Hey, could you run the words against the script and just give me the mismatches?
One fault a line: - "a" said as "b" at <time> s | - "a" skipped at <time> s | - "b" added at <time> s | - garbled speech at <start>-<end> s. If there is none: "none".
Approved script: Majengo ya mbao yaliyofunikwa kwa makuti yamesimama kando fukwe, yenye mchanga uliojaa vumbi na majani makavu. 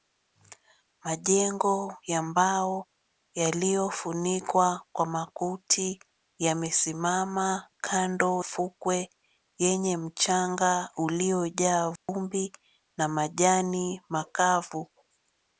none